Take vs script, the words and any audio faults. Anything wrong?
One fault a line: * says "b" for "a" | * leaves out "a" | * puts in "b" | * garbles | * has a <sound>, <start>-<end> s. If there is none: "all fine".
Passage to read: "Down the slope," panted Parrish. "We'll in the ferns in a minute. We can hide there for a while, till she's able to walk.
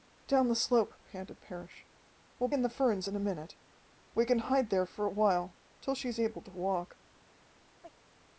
* has a chirp, 7.8-7.9 s